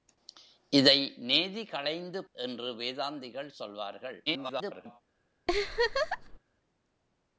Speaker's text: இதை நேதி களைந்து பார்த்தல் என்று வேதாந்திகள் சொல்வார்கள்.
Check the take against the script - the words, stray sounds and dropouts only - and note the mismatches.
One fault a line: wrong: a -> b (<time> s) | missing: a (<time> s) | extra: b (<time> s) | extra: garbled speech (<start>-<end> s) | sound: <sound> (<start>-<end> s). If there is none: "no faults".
missing: பார்த்தல் (2.2 s)
extra: garbled speech (4.3-5.0 s)
sound: laugh (5.5-6.4 s)